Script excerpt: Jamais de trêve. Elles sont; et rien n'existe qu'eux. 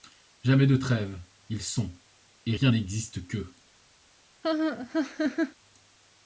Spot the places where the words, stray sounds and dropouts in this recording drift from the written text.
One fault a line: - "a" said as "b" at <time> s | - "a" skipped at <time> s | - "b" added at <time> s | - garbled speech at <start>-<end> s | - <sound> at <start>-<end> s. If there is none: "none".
- "Elles" said as "Ils" at 1.5 s
- laugh at 4.4-5.5 s